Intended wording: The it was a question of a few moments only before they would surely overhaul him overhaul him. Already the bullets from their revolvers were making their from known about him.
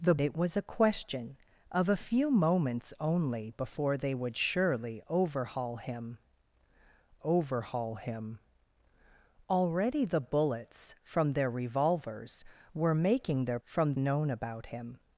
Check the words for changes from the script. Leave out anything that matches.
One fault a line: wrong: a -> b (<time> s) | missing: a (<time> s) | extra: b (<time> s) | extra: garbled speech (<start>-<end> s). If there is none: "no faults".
no faults